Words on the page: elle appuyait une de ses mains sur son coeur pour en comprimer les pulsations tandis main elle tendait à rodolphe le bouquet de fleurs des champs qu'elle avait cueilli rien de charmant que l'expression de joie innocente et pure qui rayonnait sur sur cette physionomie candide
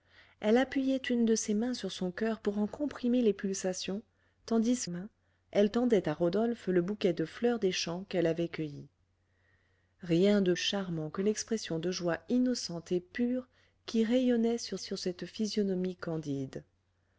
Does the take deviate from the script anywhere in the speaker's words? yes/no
no